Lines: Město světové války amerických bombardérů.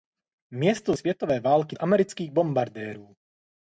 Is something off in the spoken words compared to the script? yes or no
no